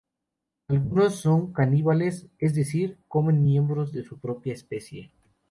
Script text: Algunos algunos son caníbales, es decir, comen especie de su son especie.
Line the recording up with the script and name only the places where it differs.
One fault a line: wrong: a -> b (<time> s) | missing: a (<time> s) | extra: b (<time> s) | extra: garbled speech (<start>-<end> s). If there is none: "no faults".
missing: algunos (1.2 s)
wrong: especie -> miembros (3.4 s)
wrong: son -> propia (4.2 s)